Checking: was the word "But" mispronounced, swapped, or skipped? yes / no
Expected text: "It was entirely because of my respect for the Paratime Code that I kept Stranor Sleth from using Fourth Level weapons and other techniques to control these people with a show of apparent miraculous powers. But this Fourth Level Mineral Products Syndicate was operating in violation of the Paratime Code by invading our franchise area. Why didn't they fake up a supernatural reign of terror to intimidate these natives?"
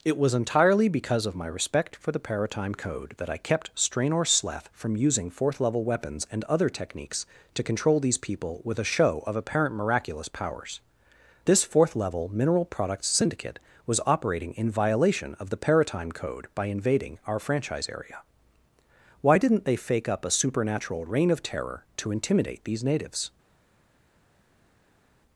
yes